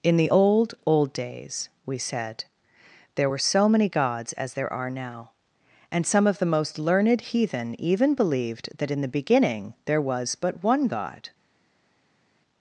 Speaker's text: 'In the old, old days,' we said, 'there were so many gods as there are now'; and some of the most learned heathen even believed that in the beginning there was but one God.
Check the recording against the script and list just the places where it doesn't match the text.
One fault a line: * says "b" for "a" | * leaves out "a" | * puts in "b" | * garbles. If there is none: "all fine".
all fine